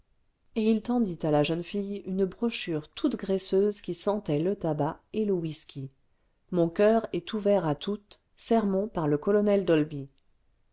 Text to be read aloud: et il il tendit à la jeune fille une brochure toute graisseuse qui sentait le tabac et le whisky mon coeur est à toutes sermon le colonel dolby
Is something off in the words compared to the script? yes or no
yes